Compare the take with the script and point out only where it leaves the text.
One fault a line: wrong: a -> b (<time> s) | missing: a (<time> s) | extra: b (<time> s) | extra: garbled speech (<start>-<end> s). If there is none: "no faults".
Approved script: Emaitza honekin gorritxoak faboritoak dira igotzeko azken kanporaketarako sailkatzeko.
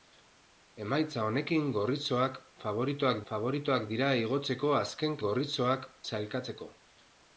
extra: faboritoak (3.3 s)
wrong: kanporaketarako -> gorritxoak (5.2 s)